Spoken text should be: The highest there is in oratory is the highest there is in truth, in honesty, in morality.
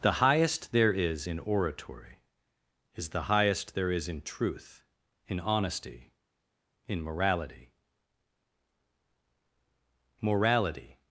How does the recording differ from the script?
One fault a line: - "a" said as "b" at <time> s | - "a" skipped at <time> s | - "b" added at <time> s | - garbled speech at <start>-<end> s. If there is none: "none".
- "morality" added at 10.2 s